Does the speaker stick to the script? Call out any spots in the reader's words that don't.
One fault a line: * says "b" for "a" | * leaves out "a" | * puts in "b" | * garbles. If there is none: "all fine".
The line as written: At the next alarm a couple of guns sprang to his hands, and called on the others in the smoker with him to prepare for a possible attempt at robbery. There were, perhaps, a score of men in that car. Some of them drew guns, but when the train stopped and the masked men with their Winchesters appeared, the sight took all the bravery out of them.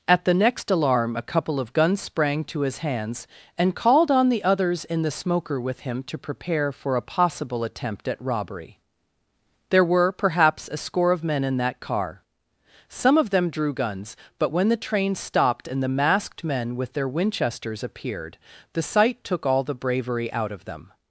all fine